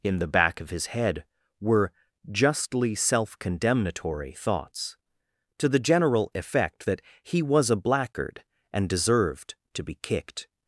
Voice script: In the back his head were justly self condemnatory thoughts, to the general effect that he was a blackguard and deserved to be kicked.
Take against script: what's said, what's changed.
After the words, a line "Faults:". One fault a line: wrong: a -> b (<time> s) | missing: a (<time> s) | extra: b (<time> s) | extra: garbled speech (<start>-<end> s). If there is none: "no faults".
In the back of his head were justly self condemnatory thoughts, to the general effect that he was a blackguard and deserved to be kicked.
Faults:
extra: of (0.6 s)